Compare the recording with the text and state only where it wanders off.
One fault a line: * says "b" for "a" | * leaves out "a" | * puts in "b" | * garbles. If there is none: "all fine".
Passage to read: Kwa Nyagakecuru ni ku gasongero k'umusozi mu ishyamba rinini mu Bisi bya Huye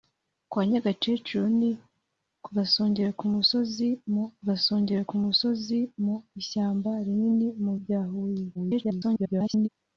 * puts in "gasongero k'umusozi mu"
* leaves out "Bisi"
* garbles